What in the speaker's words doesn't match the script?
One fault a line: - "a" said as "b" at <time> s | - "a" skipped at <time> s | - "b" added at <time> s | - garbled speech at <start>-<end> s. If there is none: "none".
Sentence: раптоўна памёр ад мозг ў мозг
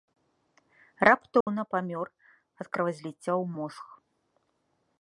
- "мозг" said as "кровазліцця" at 2.7 s